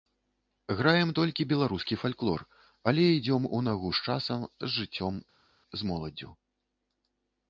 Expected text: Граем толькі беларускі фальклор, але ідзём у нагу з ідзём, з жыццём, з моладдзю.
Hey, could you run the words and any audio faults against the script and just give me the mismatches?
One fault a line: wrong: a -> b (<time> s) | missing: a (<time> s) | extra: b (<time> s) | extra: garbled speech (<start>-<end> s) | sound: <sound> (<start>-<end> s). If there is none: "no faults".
wrong: ідзём -> часам (4.1 s)